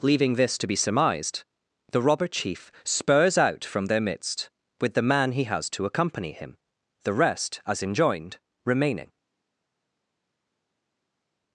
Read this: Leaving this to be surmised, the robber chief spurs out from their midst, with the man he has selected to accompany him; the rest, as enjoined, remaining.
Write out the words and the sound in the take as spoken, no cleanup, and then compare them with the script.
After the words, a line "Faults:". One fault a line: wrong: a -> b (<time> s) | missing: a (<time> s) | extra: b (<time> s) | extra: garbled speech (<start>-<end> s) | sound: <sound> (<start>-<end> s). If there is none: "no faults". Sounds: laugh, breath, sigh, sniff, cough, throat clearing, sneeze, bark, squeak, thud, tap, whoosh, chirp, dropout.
Leaving this to be surmised, the robber chief spurs out from their midst, with the man he has to accompany him; the rest, as enjoined, remaining.
Faults:
missing: selected (5.7 s)